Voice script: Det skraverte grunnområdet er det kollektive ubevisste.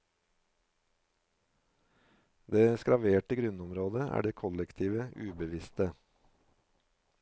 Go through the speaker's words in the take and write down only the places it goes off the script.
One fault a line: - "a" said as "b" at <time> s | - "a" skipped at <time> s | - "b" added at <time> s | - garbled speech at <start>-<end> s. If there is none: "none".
none